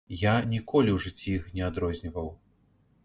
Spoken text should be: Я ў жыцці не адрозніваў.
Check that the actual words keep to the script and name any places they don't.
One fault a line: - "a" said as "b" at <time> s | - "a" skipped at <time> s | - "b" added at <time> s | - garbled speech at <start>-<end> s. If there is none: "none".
- "ніколі" added at 0.5 s
- "іх" added at 1.4 s